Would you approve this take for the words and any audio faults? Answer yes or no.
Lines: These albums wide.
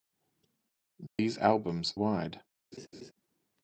no